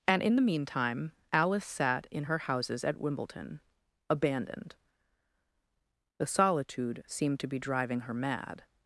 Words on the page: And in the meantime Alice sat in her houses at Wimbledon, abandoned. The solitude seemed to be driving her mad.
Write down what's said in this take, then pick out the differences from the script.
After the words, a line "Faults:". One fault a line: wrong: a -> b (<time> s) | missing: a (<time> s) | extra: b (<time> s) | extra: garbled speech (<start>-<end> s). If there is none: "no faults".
And in the meantime Alice sat in her houses at Wimbledon, abandoned. The solitude seemed to be driving her mad.
Faults:
no faults